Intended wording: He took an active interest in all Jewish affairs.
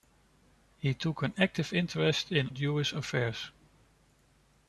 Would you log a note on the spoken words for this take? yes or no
yes